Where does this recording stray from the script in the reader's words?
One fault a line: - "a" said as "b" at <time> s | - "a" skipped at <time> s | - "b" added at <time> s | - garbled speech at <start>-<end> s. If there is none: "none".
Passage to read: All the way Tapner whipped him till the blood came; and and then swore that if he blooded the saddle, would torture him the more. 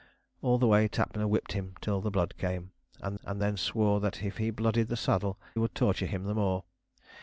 none